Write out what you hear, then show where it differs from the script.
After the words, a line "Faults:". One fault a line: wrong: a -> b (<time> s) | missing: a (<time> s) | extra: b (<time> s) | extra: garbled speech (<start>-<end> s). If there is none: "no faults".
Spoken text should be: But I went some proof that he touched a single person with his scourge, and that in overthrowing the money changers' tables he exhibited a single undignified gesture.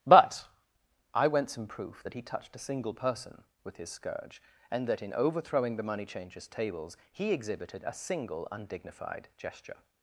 But I went some proof that he touched a single person with his scourge, and that in overthrowing the money changers' tables he exhibited a single undignified gesture.
Faults:
no faults